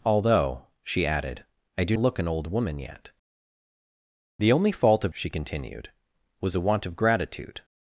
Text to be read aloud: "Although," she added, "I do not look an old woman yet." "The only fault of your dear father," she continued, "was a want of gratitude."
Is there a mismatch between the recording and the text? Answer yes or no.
yes